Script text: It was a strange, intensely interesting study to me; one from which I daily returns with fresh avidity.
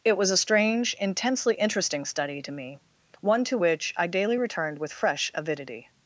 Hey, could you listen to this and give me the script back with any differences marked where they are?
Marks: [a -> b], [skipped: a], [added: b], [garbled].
It was a strange, intensely interesting study to me; one [from -> to] which I daily [returns -> returned] with fresh avidity.